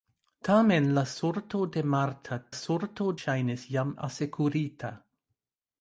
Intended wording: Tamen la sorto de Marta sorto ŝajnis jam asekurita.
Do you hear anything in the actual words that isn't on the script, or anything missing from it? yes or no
no